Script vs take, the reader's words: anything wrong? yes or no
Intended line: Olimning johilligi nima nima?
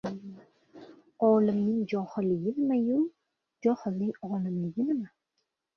yes